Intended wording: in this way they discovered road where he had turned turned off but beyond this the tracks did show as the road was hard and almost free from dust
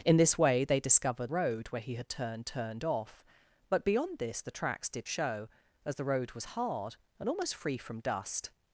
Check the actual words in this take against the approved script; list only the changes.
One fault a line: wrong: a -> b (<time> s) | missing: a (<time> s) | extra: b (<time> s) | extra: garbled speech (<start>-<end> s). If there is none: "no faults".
no faults